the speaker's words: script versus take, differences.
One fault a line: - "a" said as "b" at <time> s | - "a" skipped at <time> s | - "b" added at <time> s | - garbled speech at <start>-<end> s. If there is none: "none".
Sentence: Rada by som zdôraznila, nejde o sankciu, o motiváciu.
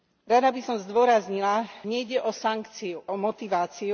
none